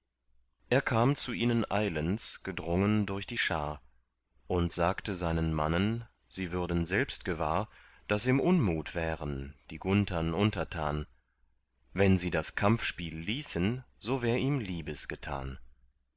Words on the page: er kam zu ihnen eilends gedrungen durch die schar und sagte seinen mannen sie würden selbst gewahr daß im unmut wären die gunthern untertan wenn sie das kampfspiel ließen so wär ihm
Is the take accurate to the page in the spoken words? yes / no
yes